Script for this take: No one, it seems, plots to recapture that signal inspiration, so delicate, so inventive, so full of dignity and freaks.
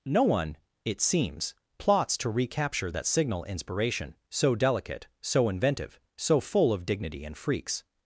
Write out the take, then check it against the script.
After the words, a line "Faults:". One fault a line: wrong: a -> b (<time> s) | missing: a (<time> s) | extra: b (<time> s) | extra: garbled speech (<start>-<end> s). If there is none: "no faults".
No one, it seems, plots to recapture that signal inspiration, so delicate, so inventive, so full of dignity and freaks.
Faults:
no faults